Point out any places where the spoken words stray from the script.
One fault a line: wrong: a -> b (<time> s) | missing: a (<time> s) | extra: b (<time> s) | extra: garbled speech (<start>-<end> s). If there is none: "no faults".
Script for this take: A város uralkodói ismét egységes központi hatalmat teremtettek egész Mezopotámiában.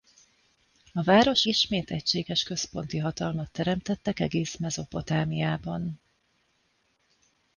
missing: uralkodói (1.4 s)